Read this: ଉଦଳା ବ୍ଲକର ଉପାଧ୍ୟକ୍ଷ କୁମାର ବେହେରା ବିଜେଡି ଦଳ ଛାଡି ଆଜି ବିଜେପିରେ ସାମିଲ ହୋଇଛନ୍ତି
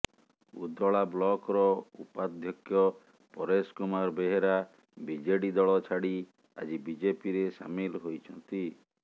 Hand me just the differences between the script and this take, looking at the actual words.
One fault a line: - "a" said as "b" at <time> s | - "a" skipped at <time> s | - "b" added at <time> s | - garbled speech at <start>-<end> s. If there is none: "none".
- "ପରେଶ" added at 3.3 s